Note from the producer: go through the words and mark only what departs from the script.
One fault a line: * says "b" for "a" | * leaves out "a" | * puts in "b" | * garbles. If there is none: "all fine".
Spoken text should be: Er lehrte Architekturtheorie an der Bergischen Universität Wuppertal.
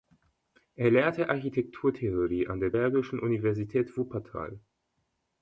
all fine